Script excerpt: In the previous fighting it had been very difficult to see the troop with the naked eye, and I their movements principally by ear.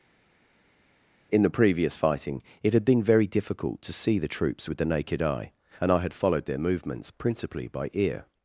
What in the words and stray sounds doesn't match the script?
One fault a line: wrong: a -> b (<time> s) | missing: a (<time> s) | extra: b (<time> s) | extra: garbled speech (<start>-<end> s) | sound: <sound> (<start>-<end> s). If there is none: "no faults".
wrong: troop -> troops (4.3 s)
extra: had followed (6.0 s)